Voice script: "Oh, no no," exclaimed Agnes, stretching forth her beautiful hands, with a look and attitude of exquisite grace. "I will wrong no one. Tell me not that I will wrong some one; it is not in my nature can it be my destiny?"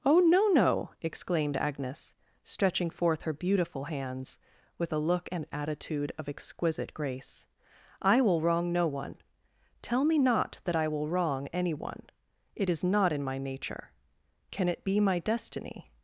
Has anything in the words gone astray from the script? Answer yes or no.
yes